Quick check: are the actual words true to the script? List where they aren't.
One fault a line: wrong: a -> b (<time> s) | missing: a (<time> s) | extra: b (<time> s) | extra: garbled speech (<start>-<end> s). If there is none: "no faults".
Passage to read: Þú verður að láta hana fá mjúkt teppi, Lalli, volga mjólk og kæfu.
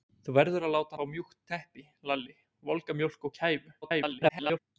missing: hana (0.9 s)
extra: garbled speech (3.8-4.6 s)